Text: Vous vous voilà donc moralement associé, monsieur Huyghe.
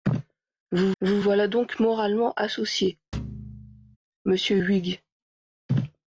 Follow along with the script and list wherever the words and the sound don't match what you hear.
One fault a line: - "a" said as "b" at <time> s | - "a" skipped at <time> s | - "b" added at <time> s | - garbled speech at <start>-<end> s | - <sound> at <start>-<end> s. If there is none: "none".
- thud at 3.1-4.0 s